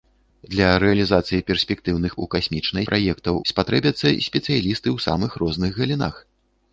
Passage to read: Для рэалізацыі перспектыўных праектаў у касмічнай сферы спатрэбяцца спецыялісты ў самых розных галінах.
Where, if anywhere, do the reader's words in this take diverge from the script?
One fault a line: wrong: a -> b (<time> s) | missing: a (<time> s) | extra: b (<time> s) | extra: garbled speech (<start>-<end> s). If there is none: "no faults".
missing: праектаў (2.1 s)
wrong: сферы -> праектаў (2.9 s)